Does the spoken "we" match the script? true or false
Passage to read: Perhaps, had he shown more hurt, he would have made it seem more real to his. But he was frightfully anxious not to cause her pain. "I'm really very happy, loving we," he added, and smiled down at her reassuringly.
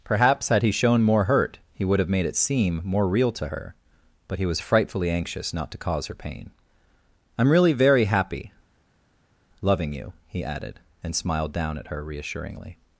false